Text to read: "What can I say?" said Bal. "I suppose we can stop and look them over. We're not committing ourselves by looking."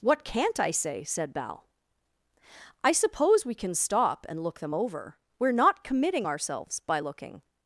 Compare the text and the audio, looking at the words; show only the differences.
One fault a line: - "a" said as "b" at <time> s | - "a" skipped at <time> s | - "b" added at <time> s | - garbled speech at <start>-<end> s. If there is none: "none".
- "can" said as "can't" at 0.2 s